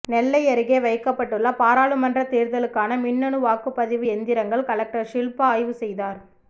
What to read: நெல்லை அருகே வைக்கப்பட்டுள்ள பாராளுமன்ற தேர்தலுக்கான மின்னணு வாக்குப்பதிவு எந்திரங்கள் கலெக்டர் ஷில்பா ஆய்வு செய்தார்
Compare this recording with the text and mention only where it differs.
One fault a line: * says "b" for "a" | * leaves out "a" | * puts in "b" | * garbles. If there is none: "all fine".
all fine